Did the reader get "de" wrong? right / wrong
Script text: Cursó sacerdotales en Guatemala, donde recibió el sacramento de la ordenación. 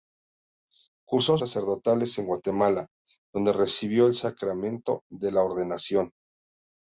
right